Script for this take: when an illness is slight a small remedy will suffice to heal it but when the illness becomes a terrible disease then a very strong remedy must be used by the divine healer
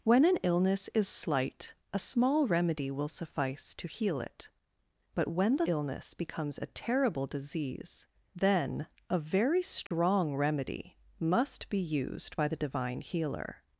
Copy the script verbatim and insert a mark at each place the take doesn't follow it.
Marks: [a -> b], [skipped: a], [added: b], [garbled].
when an illness is slight a small remedy will suffice to heal it but when the illness becomes a terrible disease then a very strong remedy must be used by the divine healer